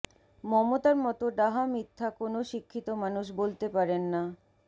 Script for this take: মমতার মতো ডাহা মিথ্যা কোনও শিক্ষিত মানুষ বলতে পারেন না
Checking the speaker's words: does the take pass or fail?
pass